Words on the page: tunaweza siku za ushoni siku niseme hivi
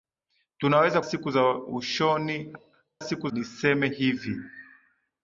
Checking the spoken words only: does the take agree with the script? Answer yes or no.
yes